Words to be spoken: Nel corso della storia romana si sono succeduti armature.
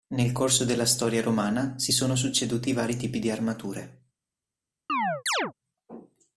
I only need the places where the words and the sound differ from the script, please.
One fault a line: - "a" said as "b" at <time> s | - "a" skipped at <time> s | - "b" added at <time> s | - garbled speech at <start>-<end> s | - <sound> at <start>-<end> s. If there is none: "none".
- "vari tipi di" added at 2.7 s
- chirp at 4.9-5.5 s